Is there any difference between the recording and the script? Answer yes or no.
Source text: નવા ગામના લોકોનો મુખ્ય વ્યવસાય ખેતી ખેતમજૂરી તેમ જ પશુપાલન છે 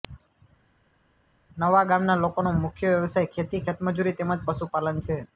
no